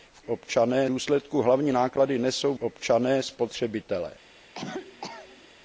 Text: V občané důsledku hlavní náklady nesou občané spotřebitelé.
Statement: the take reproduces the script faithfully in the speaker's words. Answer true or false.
true